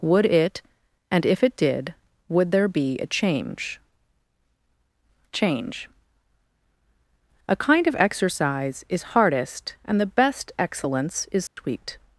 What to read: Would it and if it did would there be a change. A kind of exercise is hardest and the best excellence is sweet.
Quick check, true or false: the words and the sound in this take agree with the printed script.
false